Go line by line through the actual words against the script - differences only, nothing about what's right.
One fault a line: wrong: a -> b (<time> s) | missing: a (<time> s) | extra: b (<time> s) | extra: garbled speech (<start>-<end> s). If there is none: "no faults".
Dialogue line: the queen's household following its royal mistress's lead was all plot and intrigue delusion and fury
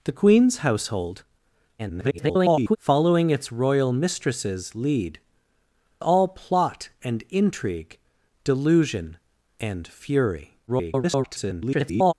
extra: garbled speech (1.8-2.8 s)
missing: was (5.2 s)
extra: garbled speech (10.7-12.1 s)